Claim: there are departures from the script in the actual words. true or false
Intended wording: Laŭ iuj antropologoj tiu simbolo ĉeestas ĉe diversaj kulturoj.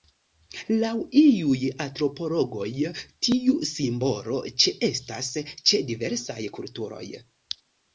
false